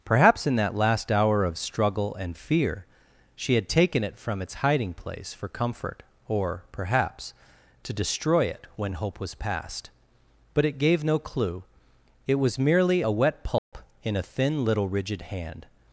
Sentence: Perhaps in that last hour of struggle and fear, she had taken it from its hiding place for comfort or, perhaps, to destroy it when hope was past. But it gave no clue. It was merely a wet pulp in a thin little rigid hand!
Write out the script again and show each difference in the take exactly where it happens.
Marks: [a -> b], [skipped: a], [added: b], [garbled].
Perhaps in that last hour of struggle and fear, she had taken it from its hiding place for comfort or, perhaps, to destroy it when hope was past. But it gave no clue. It was merely a wet pulp in a thin little rigid hand!